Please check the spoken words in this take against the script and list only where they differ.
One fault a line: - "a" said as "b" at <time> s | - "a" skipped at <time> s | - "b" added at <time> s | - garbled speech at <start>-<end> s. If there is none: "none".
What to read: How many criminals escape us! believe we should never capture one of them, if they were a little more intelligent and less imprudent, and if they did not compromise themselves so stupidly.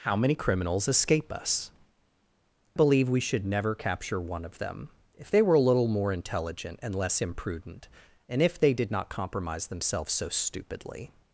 none